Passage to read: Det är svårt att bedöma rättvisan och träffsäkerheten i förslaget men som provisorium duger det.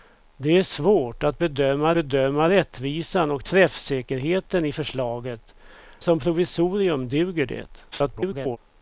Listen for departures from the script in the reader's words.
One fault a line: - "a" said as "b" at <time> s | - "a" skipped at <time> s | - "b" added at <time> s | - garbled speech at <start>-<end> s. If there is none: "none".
- "bedöma" added at 1.9 s
- "men" skipped at 5.5 s
- garbled speech at 7.9-8.6 s